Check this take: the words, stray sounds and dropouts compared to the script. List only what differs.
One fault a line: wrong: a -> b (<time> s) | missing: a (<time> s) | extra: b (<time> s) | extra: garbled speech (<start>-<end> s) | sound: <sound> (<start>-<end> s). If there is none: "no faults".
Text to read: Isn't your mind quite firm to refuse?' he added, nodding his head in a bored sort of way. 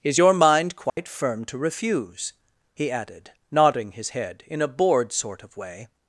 wrong: Isn't -> Is (0.0 s)
sound: dropout (0.9-1.0 s)